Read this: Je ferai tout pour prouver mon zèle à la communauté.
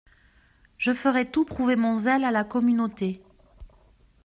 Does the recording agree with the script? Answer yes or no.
no